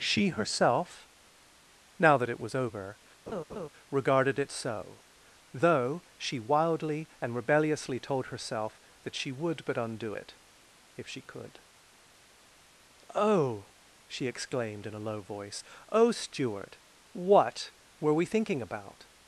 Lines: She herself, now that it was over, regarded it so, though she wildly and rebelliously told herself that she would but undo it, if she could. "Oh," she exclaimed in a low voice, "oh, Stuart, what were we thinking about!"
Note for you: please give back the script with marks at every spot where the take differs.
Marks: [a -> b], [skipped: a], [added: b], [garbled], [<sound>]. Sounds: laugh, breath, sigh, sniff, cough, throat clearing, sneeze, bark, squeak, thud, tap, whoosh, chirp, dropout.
She herself, now that it was over, [laugh] regarded it so, though she wildly and rebelliously told herself that she would but undo it, if she could. "Oh," she exclaimed in a low voice, "oh, Stuart, what were we thinking about!"